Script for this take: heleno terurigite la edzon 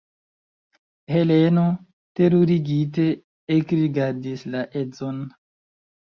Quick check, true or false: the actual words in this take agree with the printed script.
false